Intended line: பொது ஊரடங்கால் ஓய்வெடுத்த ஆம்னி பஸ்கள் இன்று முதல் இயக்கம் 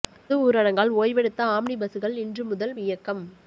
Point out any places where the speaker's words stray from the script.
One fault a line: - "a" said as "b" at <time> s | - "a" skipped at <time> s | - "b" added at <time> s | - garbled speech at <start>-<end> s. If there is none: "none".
none